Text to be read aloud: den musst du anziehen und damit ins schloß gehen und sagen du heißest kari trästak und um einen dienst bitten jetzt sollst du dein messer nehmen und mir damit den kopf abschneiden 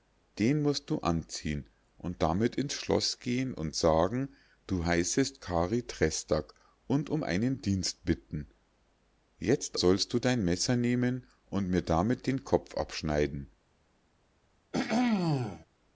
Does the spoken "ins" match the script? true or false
true